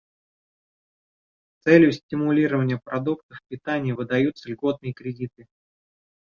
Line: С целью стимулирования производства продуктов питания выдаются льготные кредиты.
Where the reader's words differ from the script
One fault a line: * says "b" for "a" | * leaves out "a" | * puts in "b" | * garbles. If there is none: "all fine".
* leaves out "производства"